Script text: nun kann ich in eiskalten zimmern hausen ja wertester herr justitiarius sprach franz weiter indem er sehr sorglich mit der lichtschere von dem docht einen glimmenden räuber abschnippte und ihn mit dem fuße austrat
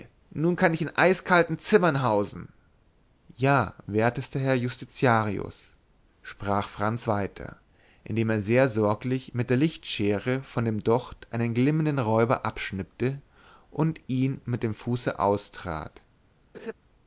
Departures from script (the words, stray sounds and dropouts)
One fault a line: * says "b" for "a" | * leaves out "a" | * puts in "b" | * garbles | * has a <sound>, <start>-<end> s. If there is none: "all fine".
* has a laugh, 16.5-16.7 s